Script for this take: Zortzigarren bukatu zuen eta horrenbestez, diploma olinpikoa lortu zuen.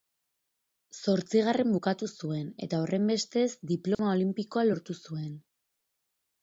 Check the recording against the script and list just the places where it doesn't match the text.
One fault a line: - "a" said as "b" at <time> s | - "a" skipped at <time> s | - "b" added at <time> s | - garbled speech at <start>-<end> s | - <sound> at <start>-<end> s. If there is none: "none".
- dropout at 3.9-4.0 s